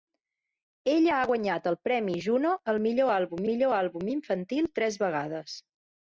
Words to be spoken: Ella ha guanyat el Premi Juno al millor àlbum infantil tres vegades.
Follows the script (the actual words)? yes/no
no